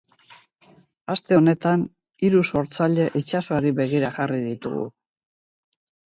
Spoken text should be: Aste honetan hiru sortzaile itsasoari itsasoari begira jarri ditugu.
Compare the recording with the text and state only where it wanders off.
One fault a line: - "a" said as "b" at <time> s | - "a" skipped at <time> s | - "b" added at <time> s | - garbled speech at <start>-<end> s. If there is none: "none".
- "itsasoari" skipped at 3.7 s